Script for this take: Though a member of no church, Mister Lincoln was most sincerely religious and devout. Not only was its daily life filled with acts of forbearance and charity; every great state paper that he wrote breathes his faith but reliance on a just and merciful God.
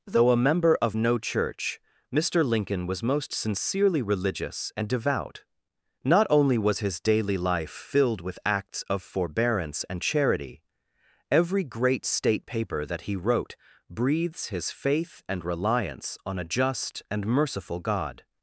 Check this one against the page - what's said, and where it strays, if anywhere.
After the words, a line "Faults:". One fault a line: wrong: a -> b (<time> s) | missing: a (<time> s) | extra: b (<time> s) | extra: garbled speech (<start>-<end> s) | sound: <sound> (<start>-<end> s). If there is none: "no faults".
Though a member of no church, Mister Lincoln was most sincerely religious and devout. Not only was his daily life filled with acts of forbearance and charity; every great state paper that he wrote breathes his faith and reliance on a just and merciful God.
Faults:
wrong: its -> his (6.8 s)
wrong: but -> and (15.3 s)